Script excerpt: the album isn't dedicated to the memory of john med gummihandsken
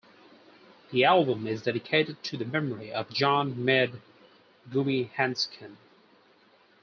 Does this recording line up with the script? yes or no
no